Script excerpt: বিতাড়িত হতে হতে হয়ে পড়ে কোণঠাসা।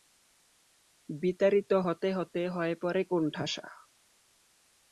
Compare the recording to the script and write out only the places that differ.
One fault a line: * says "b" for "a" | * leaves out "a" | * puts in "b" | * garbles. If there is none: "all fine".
all fine